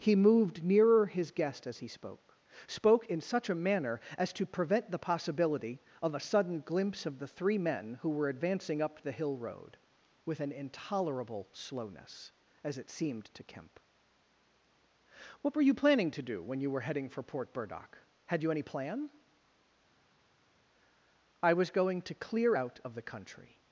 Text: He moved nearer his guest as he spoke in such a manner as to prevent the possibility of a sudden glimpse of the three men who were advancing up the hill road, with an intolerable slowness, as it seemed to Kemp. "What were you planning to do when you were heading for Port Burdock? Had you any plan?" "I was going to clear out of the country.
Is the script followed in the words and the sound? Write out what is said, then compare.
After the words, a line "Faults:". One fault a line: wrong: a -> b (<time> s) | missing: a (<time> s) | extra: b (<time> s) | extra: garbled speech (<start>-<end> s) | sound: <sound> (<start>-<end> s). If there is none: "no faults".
He moved nearer his guest as he spoke spoke in such a manner as to prevent the possibility of a sudden glimpse of the three men who were advancing up the hill road, with an intolerable slowness, as it seemed to Kemp. "What were you planning to do when you were heading for Port Burdock? Had you any plan?" "I was going to clear out of the country.
Faults:
extra: spoke (2.7 s)